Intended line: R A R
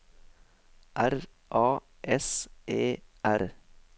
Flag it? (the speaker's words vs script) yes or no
yes